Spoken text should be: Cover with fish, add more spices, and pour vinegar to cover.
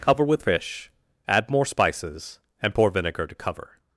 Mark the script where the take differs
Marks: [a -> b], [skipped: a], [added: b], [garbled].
Cover with fish, add more spices, and pour vinegar to cover.